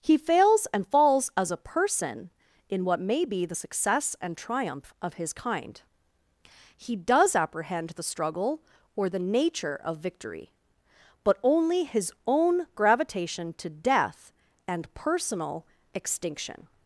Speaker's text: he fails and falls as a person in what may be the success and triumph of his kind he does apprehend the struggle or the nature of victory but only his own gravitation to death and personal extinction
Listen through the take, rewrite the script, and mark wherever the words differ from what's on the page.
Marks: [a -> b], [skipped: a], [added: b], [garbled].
he fails and falls as a person in what may be the success and triumph of his kind he does apprehend the struggle or the nature of victory but only his own gravitation to death and personal extinction